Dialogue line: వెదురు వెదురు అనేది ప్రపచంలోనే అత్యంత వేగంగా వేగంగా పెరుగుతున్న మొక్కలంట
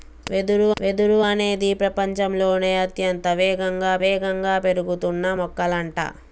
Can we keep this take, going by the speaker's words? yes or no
yes